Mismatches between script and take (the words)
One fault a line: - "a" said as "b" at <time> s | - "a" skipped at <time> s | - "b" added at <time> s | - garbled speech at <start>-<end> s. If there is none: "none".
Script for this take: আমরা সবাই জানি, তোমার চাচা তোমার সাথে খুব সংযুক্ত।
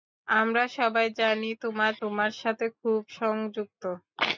- "চাচা" skipped at 1.9 s